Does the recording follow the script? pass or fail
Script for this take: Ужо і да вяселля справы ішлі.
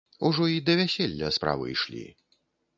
pass